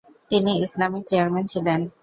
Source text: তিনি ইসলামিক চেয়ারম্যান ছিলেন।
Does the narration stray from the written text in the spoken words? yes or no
no